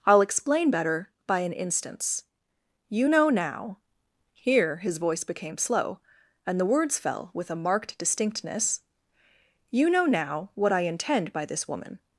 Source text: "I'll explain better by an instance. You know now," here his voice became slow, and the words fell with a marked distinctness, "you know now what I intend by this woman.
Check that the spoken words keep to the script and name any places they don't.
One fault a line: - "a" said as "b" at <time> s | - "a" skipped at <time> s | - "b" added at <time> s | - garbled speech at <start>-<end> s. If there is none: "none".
none